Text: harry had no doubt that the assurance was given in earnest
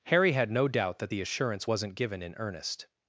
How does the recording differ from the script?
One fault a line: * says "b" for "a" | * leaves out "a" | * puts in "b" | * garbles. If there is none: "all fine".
* says "wasn't" for "was"